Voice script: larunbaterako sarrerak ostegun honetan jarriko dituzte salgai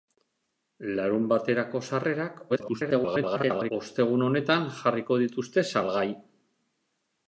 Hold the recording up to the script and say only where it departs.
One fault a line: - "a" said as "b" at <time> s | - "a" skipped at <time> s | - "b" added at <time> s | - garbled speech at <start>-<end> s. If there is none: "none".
- garbled speech at 2.5-3.7 s